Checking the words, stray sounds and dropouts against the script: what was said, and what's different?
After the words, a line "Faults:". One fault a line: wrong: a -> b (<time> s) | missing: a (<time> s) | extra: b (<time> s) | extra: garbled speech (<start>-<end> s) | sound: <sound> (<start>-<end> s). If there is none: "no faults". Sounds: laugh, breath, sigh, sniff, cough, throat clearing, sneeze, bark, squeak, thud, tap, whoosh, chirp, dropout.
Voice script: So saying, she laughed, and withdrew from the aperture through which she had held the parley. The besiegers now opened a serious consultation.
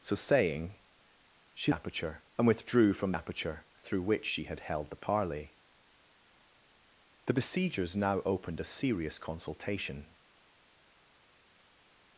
So saying, she aperture, and withdrew from aperture through which she had held the parley. The besiegers now opened a serious consultation.
Faults:
wrong: laughed -> aperture (1.7 s)
missing: the (3.1 s)